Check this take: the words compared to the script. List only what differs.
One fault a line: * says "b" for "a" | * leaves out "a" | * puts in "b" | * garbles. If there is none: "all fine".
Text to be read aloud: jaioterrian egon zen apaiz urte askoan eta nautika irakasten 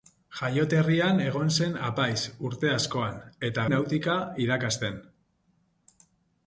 all fine